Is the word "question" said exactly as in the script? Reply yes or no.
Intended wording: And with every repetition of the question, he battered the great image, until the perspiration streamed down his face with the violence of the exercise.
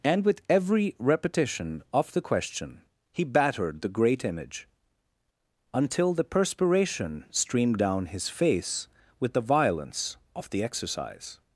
yes